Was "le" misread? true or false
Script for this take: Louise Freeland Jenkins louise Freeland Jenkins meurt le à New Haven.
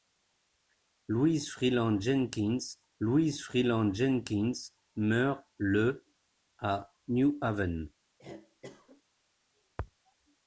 false